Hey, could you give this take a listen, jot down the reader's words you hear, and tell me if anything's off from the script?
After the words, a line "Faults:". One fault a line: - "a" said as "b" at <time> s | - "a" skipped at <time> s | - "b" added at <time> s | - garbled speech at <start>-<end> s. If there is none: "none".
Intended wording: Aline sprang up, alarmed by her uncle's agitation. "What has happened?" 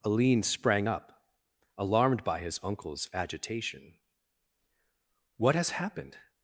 Aline sprang up, alarmed by his uncle's agitation. "What has happened?"
Faults:
- "her" said as "his" at 2.4 s